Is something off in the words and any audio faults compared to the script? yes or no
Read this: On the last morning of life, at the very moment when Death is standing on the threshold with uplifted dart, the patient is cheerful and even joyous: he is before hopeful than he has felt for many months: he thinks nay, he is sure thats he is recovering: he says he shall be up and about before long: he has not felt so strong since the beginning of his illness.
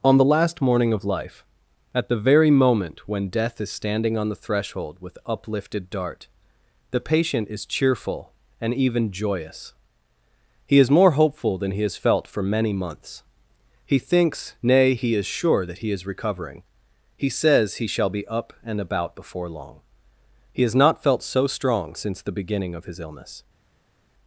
yes